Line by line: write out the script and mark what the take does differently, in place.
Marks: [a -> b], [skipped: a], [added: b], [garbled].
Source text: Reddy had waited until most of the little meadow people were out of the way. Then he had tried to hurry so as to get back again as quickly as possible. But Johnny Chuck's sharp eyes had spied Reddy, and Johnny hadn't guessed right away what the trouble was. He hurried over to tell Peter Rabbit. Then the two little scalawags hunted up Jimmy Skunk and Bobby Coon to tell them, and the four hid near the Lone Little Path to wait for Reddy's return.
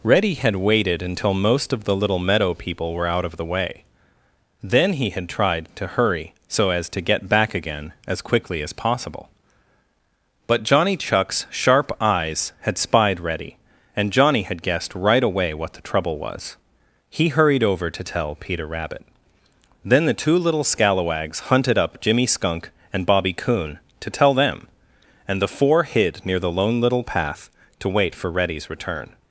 Reddy had waited until most of the little meadow people were out of the way. Then he had tried to hurry so as to get back again as quickly as possible. But Johnny Chuck's sharp eyes had spied Reddy, and Johnny [hadn't -> had] guessed right away what the trouble was. He hurried over to tell Peter Rabbit. Then the two little scalawags hunted up Jimmy Skunk and Bobby Coon to tell them, and the four hid near the Lone Little Path to wait for Reddy's return.